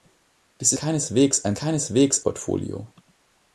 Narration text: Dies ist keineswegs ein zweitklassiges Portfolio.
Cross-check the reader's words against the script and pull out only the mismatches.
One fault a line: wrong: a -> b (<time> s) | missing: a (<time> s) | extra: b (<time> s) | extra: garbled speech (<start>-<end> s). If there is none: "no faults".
missing: ist (0.7 s)
wrong: zweitklassiges -> keineswegs (1.6 s)